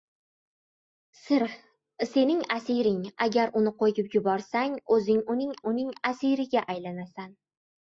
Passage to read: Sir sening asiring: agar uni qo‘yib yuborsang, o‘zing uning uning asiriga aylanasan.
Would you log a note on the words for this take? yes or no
no